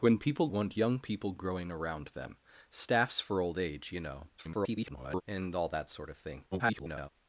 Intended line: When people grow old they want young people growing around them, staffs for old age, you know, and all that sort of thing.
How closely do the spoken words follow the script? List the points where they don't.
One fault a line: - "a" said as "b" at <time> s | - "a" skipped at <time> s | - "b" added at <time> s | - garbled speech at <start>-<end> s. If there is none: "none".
- "grow old they" skipped at 0.5 s
- garbled speech at 4.4-5.2 s
- garbled speech at 6.5-7.1 s